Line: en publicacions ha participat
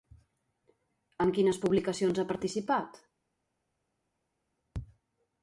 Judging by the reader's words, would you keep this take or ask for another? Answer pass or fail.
fail